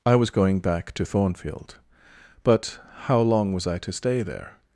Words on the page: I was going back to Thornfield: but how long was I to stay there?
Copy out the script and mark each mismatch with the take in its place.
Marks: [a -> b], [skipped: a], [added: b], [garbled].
I was going back to Thornfield: but how long was I to stay there?